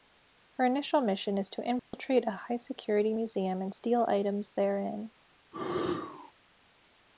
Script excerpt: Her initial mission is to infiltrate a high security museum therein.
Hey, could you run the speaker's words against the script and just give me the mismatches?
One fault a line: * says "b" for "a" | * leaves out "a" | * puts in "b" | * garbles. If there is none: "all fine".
* puts in "and steal items"